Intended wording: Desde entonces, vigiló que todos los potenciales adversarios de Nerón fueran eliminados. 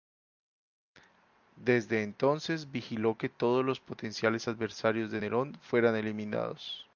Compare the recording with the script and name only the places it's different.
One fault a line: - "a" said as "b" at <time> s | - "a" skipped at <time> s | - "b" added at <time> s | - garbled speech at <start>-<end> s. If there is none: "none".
none